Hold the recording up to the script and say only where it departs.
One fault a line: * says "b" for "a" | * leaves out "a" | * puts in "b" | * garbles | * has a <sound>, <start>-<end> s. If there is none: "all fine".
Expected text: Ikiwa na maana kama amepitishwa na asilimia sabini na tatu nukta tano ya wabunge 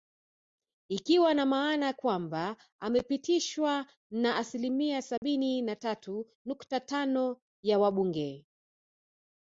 * says "kwamba" for "kama"
* has a dropout, 5.2-5.2 s